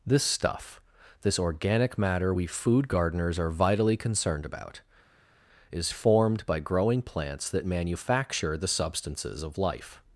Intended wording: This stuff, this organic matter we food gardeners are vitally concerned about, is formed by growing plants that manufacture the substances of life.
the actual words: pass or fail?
pass